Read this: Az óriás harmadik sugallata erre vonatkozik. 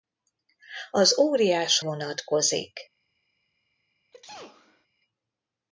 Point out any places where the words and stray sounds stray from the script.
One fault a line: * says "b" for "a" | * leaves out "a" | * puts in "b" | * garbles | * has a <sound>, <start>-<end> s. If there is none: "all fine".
* leaves out "harmadik sugallata erre"
* has a sneeze, 4.1-4.9 s